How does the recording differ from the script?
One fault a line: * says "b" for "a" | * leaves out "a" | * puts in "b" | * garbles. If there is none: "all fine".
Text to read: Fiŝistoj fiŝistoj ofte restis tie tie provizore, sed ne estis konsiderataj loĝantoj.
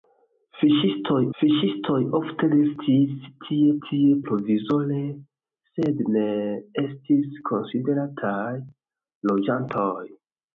all fine